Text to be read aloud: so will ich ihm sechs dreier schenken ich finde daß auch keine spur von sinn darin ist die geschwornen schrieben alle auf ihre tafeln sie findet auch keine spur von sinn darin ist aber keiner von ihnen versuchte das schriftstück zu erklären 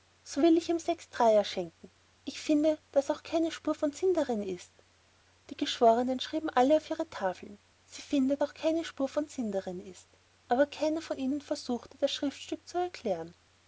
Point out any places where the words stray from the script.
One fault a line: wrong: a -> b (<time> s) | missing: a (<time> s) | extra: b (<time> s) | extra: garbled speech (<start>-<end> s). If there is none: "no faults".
no faults